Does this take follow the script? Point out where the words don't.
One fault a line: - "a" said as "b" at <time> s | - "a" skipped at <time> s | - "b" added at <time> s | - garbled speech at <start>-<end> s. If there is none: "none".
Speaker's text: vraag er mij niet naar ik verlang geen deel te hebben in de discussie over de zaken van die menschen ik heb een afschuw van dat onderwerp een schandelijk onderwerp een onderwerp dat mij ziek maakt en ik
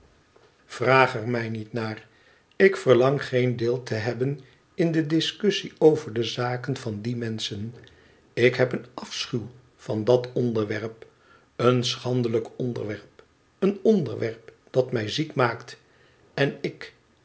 none